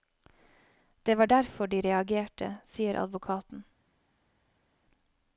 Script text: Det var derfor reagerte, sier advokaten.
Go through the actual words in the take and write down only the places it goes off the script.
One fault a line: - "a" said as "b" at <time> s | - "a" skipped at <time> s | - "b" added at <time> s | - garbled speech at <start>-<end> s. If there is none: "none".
- "de" added at 1.7 s